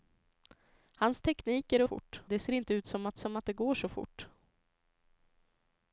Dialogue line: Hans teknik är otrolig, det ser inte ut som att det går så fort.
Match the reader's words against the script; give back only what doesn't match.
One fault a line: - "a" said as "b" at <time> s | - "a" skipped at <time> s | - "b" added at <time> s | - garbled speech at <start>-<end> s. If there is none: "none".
- "otrolig" said as "fort" at 1.8 s
- "som att" added at 3.2 s